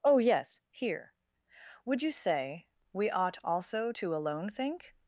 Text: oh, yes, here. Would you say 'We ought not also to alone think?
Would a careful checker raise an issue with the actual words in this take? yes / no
yes